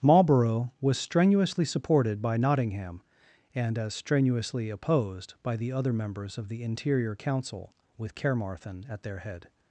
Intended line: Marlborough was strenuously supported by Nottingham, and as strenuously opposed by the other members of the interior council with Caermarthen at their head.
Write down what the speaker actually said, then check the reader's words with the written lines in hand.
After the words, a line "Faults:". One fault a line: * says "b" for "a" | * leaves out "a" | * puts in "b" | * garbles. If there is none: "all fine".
Marlborough was strenuously supported by Nottingham, and as strenuously opposed by the other members of the interior council with Caermarthen at their head.
Faults:
all fine